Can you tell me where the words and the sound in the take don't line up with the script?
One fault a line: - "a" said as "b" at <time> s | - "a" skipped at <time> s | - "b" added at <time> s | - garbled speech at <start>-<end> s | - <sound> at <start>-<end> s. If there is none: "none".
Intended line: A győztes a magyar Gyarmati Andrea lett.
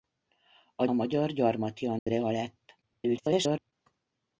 - "győztes" skipped at 0.8 s
- dropout at 2.0-2.1 s
- garbled speech at 2.8-3.7 s